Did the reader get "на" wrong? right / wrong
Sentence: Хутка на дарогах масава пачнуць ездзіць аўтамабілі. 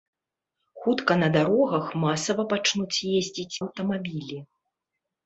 right